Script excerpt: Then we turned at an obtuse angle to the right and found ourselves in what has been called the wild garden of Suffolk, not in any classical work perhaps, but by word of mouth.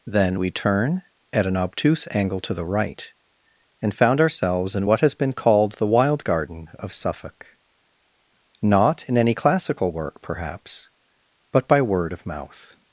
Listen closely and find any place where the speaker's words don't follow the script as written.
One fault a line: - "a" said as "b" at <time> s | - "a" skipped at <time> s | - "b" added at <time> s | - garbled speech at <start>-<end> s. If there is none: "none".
- "turned" said as "turn" at 0.5 s